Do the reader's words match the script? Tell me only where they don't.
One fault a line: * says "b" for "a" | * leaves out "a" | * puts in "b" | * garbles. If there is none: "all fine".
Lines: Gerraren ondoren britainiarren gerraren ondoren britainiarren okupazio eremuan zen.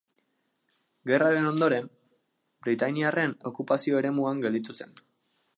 * leaves out "gerraren ondoren britainiarren"
* puts in "gelditu"